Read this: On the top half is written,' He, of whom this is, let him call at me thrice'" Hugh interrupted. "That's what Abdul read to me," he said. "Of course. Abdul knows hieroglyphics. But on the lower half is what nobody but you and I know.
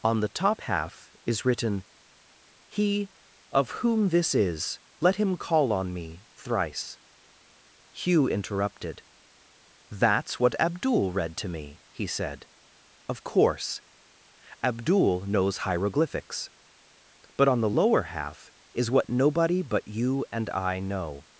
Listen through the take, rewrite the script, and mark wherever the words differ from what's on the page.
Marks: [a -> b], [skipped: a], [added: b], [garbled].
On the top half is written,' He, of whom this is, let him call [at -> on] me thrice'" Hugh interrupted. "That's what Abdul read to me," he said. "Of course. Abdul knows hieroglyphics. But on the lower half is what nobody but you and I know.